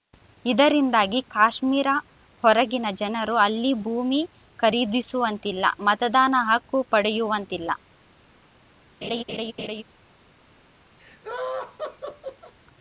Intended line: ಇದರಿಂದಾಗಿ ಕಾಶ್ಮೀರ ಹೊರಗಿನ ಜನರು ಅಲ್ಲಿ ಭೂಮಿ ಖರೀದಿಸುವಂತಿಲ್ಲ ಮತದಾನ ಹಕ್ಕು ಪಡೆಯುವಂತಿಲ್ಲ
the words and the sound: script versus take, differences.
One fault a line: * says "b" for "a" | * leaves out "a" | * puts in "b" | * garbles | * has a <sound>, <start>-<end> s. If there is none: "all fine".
* has a laugh, 9.0-9.8 s
* has a laugh, 11.0-12.5 s